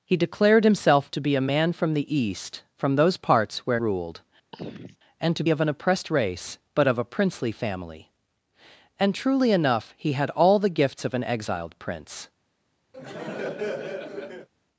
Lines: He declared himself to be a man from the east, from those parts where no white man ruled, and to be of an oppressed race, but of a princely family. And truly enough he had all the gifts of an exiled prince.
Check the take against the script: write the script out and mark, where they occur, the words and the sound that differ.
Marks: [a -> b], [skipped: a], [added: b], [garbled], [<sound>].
He declared himself to be a man from the east, from those parts where [skipped: no white man] ruled, [throat clearing] and to [skipped: be] of an oppressed race, but of a princely family. And truly enough he had all the gifts of an exiled prince. [laugh]